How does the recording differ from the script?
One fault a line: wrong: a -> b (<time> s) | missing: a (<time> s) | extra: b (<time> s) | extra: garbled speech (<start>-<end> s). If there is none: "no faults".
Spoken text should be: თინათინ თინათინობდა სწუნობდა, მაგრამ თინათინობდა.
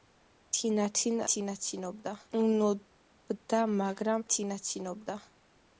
no faults